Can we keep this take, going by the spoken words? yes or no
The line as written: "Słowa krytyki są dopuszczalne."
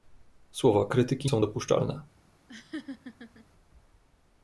yes